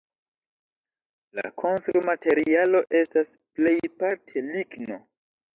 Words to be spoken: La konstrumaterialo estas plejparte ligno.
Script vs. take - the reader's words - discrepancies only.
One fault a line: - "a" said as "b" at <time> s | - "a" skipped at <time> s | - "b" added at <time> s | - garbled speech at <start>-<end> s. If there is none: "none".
none